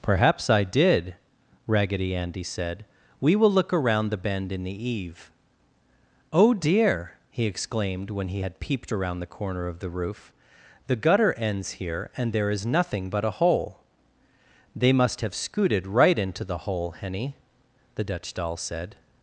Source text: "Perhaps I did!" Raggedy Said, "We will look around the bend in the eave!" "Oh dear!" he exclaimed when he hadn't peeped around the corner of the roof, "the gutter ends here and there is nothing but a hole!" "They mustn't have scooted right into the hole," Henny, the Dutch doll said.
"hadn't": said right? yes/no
no